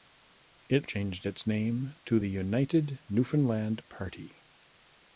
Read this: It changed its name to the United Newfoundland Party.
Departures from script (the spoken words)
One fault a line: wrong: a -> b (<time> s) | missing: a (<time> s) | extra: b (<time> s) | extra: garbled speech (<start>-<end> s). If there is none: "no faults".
no faults